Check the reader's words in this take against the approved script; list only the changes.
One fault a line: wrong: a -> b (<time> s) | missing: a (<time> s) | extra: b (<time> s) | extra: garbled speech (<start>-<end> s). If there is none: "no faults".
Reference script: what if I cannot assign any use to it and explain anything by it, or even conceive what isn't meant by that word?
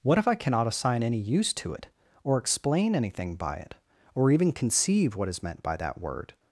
wrong: and -> or (2.2 s)
wrong: isn't -> is (5.3 s)